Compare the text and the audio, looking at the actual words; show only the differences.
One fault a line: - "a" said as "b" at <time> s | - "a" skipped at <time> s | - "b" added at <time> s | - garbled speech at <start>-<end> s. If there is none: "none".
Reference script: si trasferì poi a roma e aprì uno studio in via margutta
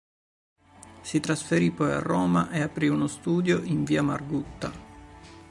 none